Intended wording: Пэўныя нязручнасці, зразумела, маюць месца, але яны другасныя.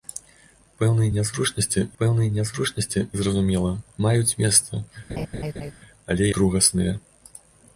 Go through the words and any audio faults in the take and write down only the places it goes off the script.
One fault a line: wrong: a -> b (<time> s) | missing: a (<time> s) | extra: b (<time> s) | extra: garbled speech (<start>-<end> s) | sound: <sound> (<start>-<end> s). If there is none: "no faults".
extra: пэўныя нязручнасці (2.0 s)
sound: laugh (5.1-5.7 s)
missing: яны (6.2 s)